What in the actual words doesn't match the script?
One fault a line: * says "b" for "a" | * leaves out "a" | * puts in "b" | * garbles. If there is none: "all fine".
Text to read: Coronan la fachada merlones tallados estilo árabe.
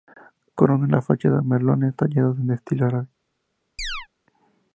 * puts in "en"